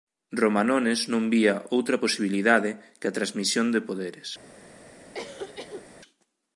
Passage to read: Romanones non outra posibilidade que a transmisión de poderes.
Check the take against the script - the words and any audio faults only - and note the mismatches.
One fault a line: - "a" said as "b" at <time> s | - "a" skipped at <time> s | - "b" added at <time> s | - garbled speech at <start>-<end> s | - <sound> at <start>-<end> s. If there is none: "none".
- "vía" added at 1.3 s
- cough at 5.1-5.9 s